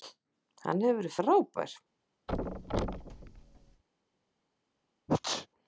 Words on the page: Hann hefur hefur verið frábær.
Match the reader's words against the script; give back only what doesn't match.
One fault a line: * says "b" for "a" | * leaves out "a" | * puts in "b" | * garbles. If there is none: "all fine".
* leaves out "hefur"